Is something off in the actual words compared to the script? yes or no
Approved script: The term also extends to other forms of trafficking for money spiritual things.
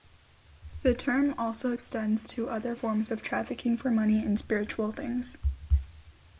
yes